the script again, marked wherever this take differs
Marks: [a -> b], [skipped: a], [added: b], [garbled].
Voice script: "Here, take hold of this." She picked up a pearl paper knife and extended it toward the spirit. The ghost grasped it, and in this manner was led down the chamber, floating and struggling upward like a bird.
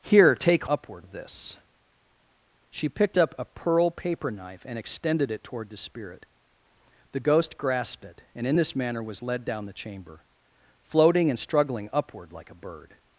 "Here, take [hold -> upward] of this." She picked up a pearl paper knife and extended it toward the spirit. The ghost grasped it, and in this manner was led down the chamber, floating and struggling upward like a bird.